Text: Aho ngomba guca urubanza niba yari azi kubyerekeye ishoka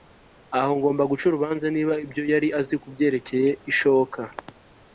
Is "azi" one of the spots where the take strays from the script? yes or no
no